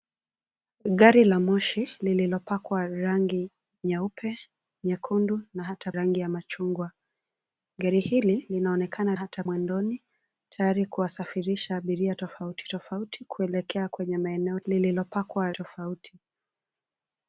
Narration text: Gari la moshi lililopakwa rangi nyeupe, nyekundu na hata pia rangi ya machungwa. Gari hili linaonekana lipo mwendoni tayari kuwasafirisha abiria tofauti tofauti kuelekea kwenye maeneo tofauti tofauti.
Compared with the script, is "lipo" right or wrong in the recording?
wrong